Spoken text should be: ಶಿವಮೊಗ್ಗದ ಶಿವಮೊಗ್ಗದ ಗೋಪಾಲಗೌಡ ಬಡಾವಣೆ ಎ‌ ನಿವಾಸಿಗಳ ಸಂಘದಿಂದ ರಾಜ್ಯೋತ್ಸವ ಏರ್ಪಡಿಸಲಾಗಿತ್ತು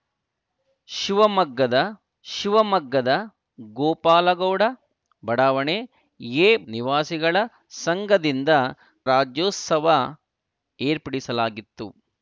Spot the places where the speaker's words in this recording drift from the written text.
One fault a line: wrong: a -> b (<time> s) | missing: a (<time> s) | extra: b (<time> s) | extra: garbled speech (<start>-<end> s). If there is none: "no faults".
no faults